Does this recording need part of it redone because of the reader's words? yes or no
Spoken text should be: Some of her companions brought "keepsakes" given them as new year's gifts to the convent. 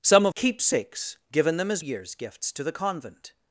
yes